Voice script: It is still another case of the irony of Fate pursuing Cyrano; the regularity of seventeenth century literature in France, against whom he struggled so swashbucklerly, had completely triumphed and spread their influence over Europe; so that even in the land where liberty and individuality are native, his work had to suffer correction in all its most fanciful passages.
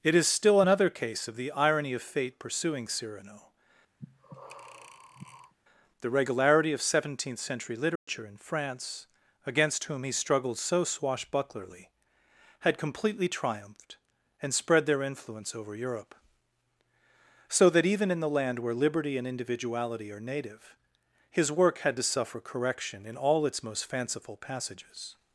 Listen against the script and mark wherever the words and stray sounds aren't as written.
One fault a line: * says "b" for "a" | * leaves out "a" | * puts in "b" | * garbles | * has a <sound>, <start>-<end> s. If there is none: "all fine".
* has a breath, 4.0-5.5 s
* has a dropout, 8.0-8.1 s